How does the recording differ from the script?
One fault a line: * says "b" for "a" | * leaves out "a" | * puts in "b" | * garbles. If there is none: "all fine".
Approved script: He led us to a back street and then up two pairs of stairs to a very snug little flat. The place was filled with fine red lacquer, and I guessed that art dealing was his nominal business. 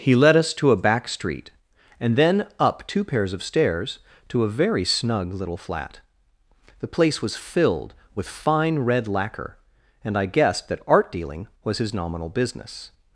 all fine